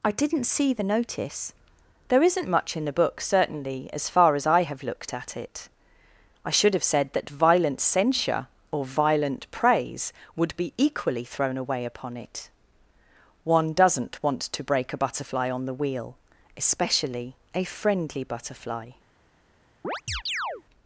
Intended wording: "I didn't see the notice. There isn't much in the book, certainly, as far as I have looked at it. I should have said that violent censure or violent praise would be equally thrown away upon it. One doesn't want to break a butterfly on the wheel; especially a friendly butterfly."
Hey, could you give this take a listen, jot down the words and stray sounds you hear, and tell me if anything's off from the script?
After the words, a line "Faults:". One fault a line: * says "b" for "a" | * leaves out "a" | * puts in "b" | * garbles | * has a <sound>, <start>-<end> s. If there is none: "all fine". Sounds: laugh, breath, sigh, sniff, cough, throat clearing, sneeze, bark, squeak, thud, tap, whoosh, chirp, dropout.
"I didn't see the notice. There isn't much in the book, certainly, as far as I have looked at it. I should have said that violent censure or violent praise would be equally thrown away upon it. One doesn't want to break a butterfly on the wheel; especially a friendly butterfly."
Faults:
* has a chirp, 19.8-20.6 s